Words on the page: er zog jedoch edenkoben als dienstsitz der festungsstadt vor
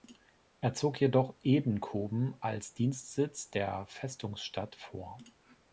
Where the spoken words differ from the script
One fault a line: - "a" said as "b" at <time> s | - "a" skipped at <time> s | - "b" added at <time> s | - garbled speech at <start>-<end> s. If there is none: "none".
none